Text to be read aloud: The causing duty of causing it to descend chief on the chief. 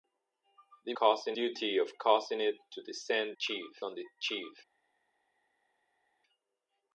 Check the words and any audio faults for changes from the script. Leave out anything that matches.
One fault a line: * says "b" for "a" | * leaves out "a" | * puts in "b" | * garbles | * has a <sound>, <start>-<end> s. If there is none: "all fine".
all fine